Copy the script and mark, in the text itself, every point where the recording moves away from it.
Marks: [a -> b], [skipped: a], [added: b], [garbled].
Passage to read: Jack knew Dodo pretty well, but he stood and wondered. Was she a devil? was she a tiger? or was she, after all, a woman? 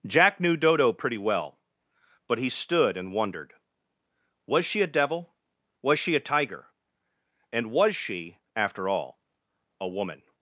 Jack knew Dodo pretty well, but he stood and wondered. Was she a devil? was she a tiger? [or -> and] was she, after all, a woman?